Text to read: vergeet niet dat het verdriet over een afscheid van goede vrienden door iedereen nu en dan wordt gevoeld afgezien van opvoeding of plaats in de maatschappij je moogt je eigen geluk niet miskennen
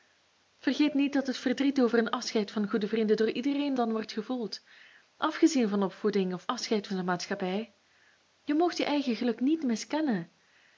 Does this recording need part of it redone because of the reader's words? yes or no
yes